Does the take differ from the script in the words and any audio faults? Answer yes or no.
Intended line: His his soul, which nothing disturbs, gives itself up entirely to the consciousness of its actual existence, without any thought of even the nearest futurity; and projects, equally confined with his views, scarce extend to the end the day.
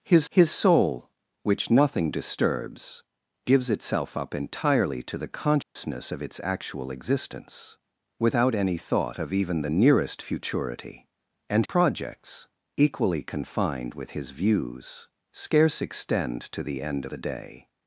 yes